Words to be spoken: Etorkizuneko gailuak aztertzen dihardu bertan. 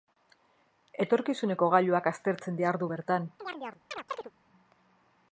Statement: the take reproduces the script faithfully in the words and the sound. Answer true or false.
false